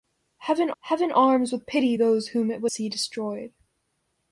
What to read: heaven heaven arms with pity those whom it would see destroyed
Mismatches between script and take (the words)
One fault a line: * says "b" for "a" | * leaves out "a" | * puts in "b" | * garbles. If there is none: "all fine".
all fine